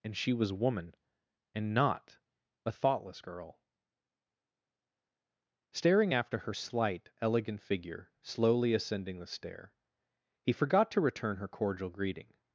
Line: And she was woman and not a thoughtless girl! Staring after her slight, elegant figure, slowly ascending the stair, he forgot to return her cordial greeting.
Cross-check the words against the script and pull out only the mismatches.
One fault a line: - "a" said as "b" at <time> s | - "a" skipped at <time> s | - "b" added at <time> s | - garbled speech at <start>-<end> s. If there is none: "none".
none